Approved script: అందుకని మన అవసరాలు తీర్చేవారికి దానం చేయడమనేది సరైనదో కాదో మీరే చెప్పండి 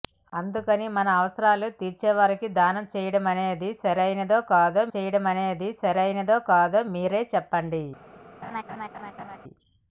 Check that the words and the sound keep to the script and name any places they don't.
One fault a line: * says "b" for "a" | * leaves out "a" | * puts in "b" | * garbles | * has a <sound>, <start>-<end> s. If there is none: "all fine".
* puts in "చేయడమనేది సరైనదో కాదో"
* has a laugh, 8.4-9.4 s